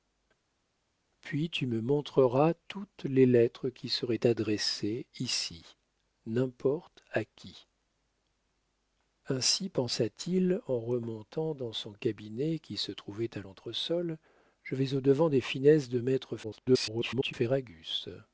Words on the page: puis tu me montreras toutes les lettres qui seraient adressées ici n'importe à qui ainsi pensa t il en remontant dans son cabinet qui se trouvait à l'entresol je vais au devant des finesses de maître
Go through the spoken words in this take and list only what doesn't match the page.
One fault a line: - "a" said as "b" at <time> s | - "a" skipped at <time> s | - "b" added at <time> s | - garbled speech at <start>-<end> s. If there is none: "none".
- garbled speech at 16.4-17.3 s